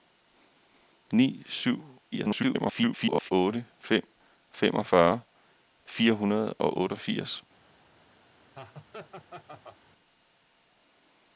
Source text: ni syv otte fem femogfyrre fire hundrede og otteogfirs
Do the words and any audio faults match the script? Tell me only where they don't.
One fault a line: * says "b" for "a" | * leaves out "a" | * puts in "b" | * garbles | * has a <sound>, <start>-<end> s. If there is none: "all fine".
* garbles
* has a laugh, 8.5-9.8 s